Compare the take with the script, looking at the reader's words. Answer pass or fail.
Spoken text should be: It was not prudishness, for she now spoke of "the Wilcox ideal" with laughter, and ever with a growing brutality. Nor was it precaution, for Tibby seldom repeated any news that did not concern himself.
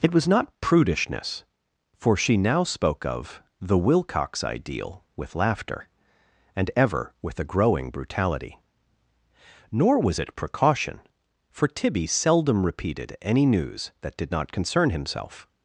pass